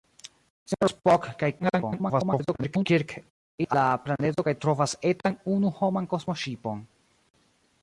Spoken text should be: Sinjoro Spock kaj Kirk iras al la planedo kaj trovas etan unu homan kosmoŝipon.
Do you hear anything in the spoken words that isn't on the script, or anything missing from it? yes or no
yes